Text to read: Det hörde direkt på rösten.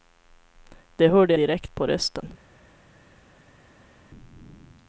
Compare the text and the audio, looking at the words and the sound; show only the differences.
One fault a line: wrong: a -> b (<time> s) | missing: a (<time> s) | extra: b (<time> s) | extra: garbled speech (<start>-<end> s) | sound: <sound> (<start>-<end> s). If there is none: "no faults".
no faults